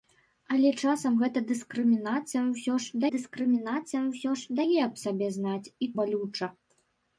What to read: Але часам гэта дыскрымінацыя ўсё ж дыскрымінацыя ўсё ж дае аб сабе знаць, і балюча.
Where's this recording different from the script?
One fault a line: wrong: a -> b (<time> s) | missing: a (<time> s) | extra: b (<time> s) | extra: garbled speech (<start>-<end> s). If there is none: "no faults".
no faults